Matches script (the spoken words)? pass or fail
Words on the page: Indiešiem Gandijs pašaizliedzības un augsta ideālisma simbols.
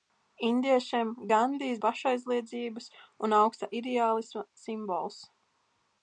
pass